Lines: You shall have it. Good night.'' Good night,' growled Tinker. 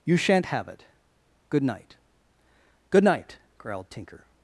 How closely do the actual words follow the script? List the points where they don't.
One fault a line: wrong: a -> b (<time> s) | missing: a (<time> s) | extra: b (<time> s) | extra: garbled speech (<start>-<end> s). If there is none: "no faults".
wrong: shall -> shan't (0.2 s)